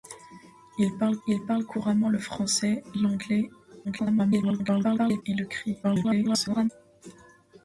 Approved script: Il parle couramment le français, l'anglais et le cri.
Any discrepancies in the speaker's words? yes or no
yes